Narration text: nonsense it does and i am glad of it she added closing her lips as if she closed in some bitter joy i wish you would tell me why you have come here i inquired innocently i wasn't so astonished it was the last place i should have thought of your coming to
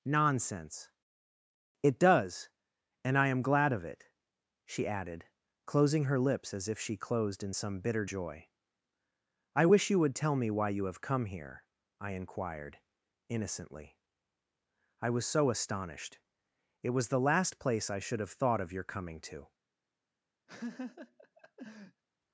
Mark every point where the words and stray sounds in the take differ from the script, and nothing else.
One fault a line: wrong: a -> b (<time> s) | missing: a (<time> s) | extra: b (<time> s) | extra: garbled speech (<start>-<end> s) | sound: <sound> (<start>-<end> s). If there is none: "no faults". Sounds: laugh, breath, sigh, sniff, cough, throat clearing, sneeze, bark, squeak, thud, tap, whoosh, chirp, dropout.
wrong: wasn't -> was (15.1 s)
sound: laugh (20.5-22.0 s)